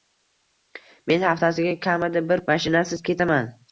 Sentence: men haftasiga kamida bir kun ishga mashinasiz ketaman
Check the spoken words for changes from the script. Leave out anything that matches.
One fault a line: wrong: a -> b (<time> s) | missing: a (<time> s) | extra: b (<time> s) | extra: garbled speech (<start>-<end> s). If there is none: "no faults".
missing: kun ishga (2.4 s)